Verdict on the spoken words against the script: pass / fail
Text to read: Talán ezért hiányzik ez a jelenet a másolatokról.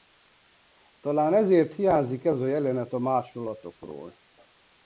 pass